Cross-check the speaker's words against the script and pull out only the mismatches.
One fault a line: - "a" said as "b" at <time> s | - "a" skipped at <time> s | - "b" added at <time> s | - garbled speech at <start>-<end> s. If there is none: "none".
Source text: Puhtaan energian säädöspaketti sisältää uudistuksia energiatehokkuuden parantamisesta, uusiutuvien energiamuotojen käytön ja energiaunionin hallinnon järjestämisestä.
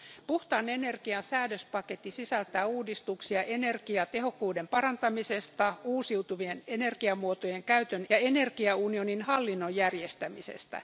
none